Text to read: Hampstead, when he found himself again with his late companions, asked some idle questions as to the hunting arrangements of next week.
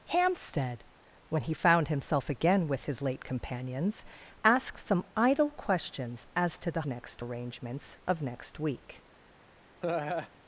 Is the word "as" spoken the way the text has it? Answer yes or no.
yes